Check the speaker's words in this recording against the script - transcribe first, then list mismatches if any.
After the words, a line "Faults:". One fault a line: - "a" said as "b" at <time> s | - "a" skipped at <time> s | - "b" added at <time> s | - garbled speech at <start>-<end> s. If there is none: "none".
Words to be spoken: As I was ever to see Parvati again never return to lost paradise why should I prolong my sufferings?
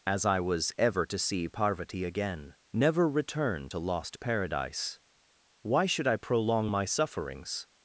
As I was ever to see Parvati again never return to lost paradise why should I prolong my sufferings?
Faults:
none